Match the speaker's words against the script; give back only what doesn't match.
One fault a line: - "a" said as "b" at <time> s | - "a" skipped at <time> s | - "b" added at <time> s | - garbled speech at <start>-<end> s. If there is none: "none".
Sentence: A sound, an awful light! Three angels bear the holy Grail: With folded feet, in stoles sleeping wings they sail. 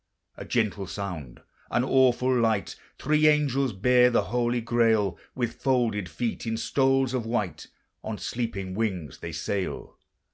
- "gentle" added at 0.5 s
- "of white On" added at 7.1 s